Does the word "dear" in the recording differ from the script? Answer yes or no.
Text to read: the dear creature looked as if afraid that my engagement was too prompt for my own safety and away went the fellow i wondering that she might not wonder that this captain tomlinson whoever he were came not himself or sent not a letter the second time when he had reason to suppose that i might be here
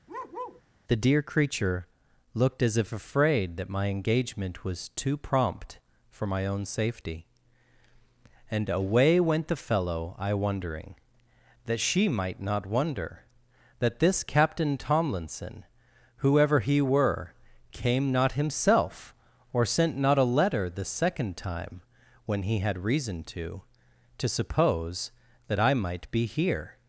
no